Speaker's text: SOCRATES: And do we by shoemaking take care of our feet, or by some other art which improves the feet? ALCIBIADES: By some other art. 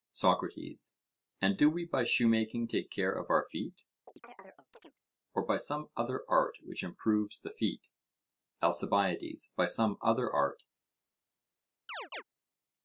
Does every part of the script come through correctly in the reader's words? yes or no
yes